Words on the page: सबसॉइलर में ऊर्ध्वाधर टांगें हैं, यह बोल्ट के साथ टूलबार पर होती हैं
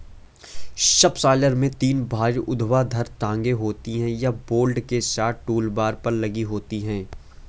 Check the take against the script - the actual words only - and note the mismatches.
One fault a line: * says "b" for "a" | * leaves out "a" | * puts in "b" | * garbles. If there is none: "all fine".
* puts in "तीन भारी"
* puts in "होती"
* puts in "लगी"